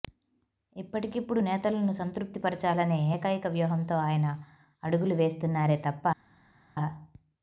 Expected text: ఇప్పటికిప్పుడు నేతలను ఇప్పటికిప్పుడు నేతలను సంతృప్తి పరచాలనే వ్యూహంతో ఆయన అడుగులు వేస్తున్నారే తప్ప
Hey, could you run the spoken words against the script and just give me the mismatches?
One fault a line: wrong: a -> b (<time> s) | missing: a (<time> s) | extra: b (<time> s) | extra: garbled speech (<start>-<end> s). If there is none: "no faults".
missing: ఇప్పటికిప్పుడు నేతలను (1.9 s)
extra: ఏకైక (3.2 s)